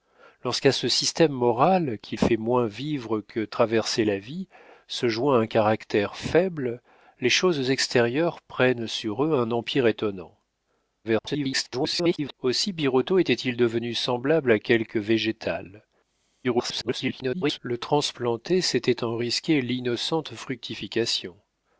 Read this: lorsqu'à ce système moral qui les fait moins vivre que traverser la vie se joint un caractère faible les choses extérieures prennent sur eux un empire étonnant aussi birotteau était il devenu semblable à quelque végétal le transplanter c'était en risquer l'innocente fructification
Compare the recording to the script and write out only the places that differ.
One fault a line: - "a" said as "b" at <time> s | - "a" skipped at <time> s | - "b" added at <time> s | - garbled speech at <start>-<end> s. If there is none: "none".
- "les" skipped at 2.2 s
- garbled speech at 11.0-12.3 s
- garbled speech at 16.4-17.6 s